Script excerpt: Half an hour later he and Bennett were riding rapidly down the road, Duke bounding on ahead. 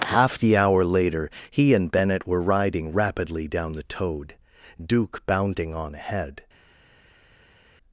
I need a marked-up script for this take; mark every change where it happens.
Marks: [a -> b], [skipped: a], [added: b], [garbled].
Half [an -> the] hour later he and Bennett were riding rapidly down the [road, -> toad] Duke bounding on ahead.